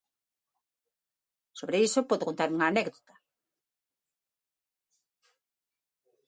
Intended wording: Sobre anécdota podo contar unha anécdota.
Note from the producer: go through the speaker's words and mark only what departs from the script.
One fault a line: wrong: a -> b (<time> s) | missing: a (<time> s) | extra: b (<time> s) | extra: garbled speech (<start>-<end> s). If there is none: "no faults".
wrong: anécdota -> iso (1.9 s)